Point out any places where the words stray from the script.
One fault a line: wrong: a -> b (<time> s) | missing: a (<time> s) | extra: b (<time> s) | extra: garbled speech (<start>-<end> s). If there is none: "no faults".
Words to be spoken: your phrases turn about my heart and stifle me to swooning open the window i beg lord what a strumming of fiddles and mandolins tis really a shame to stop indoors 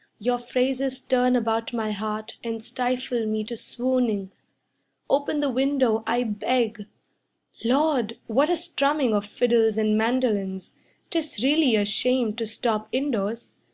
no faults